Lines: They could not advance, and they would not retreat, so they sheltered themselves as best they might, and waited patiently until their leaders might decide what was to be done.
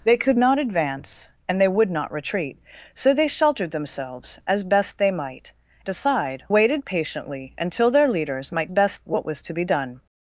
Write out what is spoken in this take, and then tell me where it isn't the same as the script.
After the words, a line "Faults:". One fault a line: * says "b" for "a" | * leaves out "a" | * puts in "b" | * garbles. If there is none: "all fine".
They could not advance, and they would not retreat, so they sheltered themselves as best they might, decide waited patiently until their leaders might best what was to be done.
Faults:
* says "decide" for "and"
* says "best" for "decide"